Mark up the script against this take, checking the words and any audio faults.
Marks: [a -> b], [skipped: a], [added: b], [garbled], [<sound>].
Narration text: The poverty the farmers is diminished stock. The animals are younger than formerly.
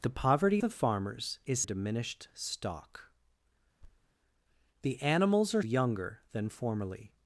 The poverty the farmers is diminished stock. [thud] The animals are younger than formerly.